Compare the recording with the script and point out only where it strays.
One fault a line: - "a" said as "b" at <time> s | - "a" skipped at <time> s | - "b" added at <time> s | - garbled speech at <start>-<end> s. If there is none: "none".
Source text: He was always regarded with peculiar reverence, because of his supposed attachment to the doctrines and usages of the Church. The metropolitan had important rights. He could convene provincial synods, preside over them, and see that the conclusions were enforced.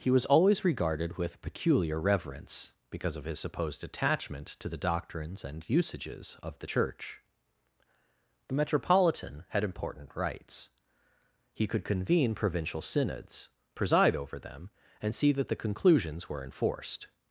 none